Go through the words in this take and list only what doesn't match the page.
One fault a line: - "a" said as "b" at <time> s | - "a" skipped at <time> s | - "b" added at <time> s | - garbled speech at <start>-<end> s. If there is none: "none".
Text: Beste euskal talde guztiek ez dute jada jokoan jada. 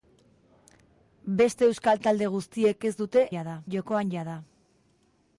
none